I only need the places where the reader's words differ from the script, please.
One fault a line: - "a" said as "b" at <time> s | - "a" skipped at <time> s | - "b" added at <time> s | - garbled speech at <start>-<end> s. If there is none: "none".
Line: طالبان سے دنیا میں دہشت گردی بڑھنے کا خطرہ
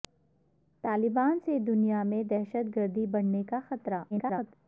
- garbled speech at 4.1-4.5 s